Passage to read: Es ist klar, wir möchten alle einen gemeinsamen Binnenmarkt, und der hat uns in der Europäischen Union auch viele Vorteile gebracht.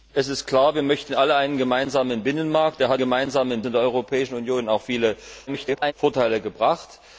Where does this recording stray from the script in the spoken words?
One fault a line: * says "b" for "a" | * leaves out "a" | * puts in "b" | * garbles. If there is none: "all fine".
* leaves out "und"
* says "gemeinsamen" for "uns"
* garbles